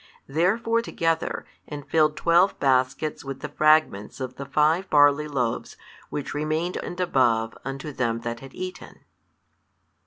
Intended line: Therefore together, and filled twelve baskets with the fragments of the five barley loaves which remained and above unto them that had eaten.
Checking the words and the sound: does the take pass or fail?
pass